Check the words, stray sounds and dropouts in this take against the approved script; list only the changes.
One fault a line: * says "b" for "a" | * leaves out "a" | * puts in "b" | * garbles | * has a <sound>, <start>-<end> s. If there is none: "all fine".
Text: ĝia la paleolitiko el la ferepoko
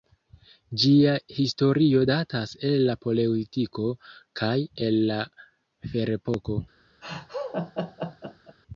* puts in "historio datas el"
* puts in "kaj"
* has a laugh, 7.0-8.6 s